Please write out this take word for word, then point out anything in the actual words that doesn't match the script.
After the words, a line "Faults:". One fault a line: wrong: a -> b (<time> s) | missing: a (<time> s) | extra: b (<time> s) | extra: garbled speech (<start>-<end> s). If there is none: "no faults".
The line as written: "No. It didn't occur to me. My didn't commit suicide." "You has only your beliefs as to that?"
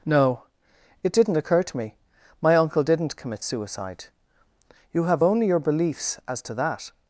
"No. It didn't occur to me. My uncle didn't commit suicide." "You have only your beliefs as to that?"
Faults:
extra: uncle (2.5 s)
wrong: has -> have (5.0 s)